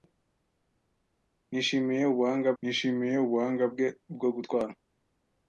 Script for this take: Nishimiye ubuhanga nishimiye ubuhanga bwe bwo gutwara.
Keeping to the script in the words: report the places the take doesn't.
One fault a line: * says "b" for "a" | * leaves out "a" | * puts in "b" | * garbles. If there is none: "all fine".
all fine